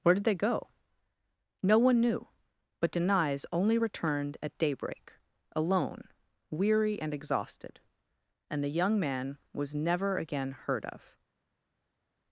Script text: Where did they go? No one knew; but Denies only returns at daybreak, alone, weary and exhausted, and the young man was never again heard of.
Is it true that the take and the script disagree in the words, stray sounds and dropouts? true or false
true